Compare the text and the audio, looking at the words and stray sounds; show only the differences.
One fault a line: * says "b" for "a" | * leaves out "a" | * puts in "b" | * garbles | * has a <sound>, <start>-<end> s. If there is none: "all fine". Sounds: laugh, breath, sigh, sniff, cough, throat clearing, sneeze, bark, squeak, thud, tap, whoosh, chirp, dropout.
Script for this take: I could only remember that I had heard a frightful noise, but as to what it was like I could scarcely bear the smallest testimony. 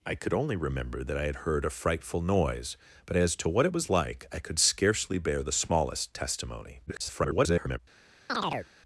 * garbles
* has a chirp, 8.3-8.7 s